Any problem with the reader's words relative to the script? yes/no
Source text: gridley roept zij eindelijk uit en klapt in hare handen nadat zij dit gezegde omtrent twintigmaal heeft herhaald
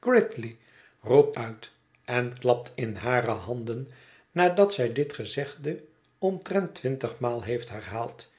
yes